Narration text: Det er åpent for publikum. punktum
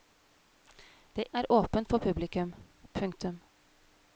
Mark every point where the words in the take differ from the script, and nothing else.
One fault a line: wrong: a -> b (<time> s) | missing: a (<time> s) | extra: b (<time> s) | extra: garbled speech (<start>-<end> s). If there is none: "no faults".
no faults